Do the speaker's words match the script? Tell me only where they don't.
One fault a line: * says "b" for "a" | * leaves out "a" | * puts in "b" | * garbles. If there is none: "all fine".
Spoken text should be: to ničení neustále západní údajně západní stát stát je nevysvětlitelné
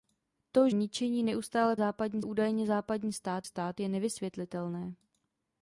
all fine